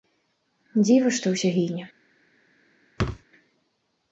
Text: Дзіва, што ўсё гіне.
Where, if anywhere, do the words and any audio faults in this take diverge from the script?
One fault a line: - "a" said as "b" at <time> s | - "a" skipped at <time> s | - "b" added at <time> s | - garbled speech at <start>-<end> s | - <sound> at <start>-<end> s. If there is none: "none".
- thud at 3.0-3.2 s